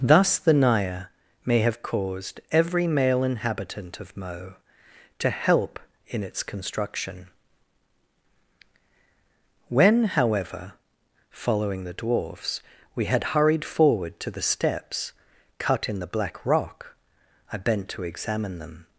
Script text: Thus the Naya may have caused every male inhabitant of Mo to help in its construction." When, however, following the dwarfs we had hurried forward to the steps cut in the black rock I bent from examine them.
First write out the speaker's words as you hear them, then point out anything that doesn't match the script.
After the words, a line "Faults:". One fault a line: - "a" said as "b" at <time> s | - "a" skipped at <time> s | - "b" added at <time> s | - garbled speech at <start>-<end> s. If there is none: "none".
Thus the Naya may have caused every male inhabitant of Mo to help in its construction." When, however, following the dwarfs we had hurried forward to the steps cut in the black rock I bent to examine them.
Faults:
- "from" said as "to" at 17.9 s